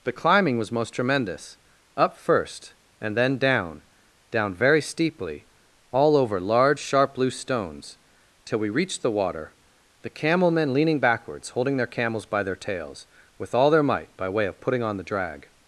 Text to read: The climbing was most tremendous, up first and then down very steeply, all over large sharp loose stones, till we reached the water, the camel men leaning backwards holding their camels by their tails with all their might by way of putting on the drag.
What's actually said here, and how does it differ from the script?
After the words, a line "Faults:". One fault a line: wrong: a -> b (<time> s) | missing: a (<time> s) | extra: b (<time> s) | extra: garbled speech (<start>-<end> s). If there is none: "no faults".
The climbing was most tremendous, up first and then down down very steeply, all over large sharp loose stones, till we reached the water, the camel men leaning backwards holding their camels by their tails with all their might by way of putting on the drag.
Faults:
extra: down (4.3 s)